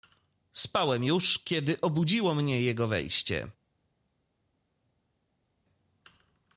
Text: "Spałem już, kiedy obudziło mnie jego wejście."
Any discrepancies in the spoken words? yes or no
no